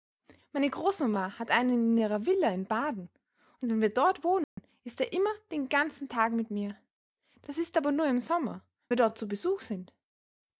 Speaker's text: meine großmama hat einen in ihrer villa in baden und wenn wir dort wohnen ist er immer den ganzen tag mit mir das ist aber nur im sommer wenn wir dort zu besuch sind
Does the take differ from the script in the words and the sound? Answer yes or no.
yes